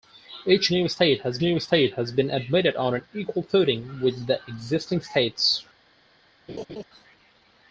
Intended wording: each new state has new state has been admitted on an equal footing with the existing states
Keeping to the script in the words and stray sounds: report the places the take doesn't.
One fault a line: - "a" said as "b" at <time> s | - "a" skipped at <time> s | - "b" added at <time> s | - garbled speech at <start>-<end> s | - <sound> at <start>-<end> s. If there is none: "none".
- laugh at 6.5-6.8 s